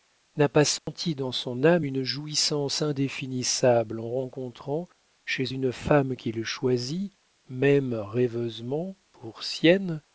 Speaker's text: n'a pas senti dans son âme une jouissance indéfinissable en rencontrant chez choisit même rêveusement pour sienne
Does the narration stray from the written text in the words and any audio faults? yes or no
yes